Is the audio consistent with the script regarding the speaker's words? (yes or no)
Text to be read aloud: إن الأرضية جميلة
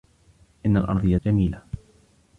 yes